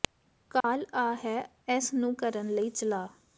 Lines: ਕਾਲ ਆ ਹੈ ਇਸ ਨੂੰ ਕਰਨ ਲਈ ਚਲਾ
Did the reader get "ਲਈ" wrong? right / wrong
right